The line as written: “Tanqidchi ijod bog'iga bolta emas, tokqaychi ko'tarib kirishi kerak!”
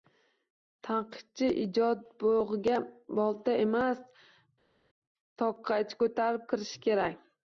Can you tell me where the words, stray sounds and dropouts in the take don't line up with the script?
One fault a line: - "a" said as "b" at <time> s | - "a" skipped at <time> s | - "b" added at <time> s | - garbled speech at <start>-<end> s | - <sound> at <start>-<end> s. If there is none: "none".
none